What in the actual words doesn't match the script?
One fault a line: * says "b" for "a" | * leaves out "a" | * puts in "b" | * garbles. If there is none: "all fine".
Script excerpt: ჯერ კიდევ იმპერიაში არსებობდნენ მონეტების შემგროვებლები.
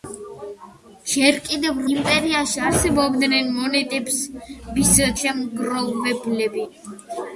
all fine